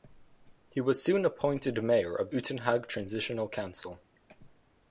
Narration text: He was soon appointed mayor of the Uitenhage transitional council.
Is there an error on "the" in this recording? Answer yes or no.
yes